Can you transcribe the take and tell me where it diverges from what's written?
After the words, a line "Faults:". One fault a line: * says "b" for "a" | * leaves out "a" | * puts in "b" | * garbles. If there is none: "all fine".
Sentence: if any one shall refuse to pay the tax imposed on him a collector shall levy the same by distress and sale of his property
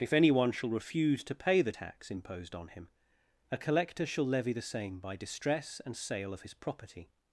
if any one shall refuse to pay the tax imposed on him a collector shall levy the same by distress and sale of his property
Faults:
all fine